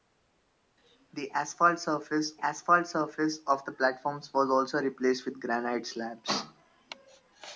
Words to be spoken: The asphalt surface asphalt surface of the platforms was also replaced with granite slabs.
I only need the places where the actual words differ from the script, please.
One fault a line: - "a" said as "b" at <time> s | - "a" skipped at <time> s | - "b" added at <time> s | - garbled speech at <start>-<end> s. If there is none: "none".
none